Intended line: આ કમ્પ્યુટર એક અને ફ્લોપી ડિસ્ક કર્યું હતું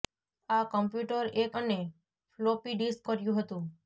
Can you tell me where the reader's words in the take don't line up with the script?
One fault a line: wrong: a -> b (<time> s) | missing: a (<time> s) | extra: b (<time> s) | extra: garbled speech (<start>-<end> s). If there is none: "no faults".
no faults